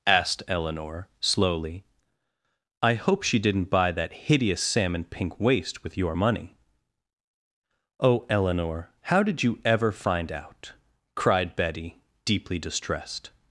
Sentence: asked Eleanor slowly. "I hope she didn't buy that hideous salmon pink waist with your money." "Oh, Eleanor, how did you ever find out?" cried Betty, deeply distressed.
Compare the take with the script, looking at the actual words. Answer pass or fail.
pass